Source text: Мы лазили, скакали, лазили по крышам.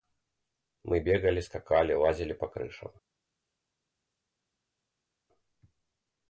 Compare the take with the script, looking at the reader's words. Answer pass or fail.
fail